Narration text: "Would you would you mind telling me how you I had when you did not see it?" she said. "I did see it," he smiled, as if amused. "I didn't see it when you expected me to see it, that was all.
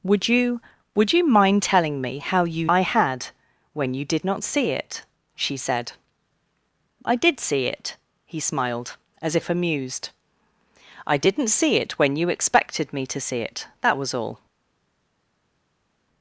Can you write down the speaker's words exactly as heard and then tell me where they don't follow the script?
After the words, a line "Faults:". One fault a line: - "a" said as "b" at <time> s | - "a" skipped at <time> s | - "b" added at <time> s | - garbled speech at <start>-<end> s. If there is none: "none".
"Would you would you mind telling me how you I had when you did not see it?" she said. "I did see it," he smiled, as if amused. "I didn't see it when you expected me to see it, that was all.
Faults:
none